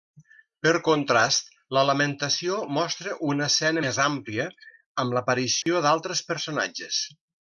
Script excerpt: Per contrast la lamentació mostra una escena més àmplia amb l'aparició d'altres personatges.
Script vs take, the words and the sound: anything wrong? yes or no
yes